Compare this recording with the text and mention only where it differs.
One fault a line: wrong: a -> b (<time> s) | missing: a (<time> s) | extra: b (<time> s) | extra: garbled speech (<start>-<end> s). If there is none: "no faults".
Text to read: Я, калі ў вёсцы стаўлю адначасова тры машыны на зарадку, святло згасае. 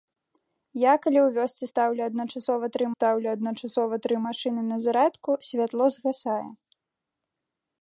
extra: стаўлю адначасова тры (2.9 s)